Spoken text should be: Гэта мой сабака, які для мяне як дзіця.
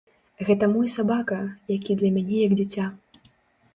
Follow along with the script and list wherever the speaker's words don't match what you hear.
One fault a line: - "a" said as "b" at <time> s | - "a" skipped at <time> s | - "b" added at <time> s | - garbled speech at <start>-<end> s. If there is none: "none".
none